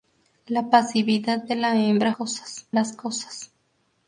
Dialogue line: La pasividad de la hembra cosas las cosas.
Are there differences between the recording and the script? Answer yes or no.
no